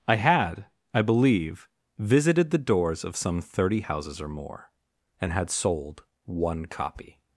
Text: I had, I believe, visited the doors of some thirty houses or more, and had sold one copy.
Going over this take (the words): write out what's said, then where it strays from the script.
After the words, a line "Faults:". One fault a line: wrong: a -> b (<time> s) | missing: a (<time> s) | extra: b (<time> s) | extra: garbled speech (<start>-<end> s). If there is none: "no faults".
I had, I believe, visited the doors of some thirty houses or more, and had sold one copy.
Faults:
no faults